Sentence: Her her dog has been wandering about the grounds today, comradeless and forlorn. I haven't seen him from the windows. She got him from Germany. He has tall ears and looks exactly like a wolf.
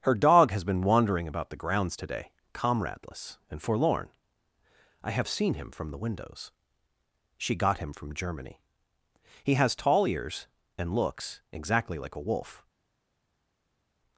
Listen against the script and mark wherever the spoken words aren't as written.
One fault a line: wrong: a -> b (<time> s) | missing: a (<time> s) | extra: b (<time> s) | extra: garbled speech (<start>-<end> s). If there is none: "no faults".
missing: her (0.1 s)
wrong: haven't -> have (5.1 s)